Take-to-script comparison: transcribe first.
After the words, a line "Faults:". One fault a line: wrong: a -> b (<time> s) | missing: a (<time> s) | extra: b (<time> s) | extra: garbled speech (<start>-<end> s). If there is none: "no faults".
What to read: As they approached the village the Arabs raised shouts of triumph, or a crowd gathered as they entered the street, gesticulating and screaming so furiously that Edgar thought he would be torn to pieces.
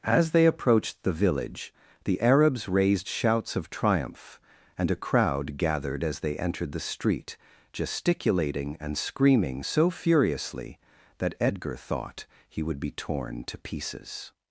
As they approached the village the Arabs raised shouts of triumph, and a crowd gathered as they entered the street, gesticulating and screaming so furiously that Edgar thought he would be torn to pieces.
Faults:
wrong: or -> and (4.8 s)